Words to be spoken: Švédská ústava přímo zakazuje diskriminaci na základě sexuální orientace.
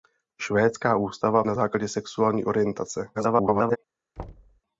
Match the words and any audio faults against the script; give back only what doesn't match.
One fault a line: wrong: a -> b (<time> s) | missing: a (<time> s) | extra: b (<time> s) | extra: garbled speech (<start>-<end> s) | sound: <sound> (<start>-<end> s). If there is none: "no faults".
missing: přímo zakazuje diskriminaci (1.4 s)
extra: garbled speech (3.1-3.8 s)
sound: thud (4.2-4.6 s)